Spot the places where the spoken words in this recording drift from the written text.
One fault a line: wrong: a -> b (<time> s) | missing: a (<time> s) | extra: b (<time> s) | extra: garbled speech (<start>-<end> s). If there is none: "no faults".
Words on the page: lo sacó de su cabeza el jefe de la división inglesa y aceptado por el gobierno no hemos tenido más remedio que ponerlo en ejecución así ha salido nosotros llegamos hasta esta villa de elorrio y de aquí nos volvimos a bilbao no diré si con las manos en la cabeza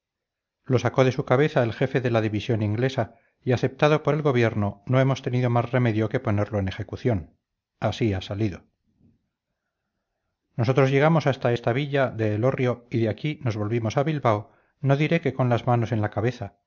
wrong: si -> que (15.2 s)